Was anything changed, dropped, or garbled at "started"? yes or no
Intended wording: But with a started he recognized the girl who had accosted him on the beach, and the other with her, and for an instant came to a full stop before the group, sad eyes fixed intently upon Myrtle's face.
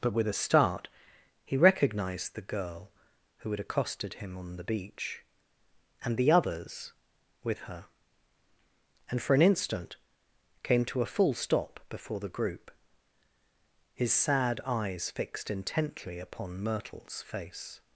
yes